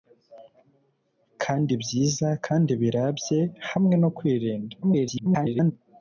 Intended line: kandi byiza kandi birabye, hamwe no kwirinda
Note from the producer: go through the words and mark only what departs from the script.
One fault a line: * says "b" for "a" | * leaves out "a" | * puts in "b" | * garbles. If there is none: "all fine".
* garbles